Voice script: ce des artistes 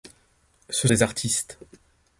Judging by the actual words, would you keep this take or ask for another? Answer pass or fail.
pass